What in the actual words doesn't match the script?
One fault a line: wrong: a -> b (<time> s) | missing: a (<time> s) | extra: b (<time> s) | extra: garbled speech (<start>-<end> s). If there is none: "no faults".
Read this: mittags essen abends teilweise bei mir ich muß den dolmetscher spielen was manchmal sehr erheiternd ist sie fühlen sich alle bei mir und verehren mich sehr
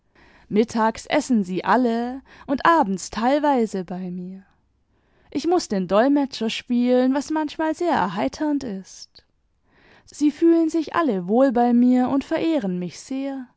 extra: sie alle und (1.4 s)
extra: wohl (11.3 s)